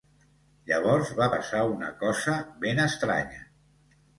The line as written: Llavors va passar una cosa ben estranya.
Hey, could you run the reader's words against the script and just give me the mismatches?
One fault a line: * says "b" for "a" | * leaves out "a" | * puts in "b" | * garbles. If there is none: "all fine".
all fine